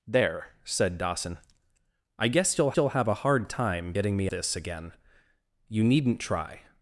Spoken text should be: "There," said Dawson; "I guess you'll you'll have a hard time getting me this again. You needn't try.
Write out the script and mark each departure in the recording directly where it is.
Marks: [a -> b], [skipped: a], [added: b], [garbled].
"There," said Dawson; "I guess you'll you'll have a hard time getting me this again. You needn't try.